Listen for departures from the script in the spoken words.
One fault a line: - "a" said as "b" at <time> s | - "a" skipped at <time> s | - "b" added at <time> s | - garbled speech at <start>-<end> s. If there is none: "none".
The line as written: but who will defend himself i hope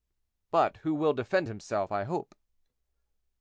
none